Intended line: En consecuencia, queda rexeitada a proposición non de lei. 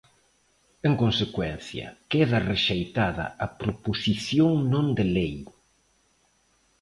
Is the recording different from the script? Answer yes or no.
no